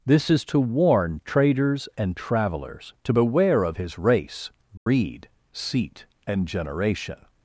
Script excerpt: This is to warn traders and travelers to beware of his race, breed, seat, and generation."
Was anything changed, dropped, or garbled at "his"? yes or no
no